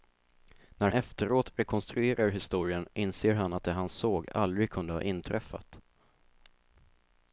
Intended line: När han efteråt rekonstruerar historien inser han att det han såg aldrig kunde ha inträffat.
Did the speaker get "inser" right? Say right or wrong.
right